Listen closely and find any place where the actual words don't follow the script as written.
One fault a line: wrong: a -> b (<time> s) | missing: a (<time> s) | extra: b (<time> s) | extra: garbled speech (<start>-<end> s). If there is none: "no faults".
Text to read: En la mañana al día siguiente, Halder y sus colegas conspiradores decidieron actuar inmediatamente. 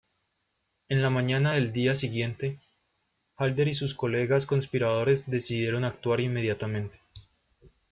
wrong: al -> del (1.5 s)